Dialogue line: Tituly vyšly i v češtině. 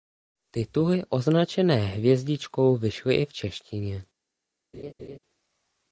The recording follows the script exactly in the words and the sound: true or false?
false